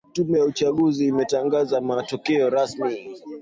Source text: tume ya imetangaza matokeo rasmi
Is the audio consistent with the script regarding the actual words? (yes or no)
no